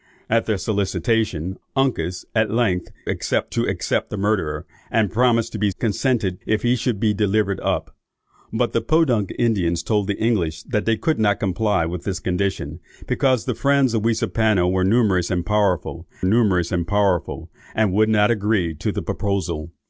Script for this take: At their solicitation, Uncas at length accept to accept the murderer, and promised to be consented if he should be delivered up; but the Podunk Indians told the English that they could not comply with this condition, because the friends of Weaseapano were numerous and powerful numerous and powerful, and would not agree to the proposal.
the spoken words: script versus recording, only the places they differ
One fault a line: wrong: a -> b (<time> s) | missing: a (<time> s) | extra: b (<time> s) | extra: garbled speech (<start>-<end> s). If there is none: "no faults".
no faults